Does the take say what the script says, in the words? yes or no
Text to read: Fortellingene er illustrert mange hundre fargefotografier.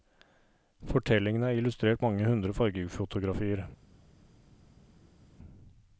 yes